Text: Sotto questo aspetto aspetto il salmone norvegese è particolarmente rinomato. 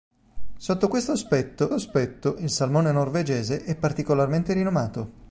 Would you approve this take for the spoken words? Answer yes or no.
yes